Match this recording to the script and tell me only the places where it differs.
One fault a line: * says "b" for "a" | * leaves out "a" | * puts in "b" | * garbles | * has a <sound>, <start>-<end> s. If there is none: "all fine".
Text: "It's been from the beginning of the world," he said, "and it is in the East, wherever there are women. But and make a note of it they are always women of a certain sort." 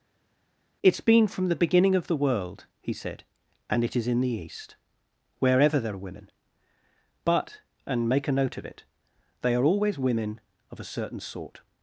all fine